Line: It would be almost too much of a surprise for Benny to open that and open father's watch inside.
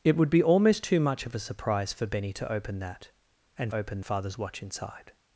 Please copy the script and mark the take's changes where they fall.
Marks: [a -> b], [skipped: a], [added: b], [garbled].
It would be almost too much of a surprise for Benny to open that and open father's watch inside.